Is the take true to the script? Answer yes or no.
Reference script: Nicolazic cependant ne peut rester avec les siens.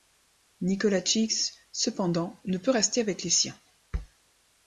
yes